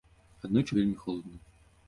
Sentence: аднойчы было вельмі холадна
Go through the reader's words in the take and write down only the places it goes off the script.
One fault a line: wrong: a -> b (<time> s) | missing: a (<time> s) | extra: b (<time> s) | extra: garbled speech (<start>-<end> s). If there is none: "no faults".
missing: было (0.7 s)